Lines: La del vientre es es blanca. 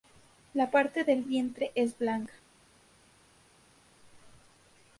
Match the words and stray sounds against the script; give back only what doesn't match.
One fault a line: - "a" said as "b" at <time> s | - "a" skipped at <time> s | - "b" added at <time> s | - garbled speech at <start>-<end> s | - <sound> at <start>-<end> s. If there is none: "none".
- "parte" added at 0.7 s
- "es" skipped at 2.0 s